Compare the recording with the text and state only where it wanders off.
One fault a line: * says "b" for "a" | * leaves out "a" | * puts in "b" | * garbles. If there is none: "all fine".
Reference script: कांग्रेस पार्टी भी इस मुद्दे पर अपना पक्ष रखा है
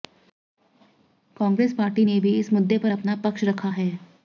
* puts in "ने"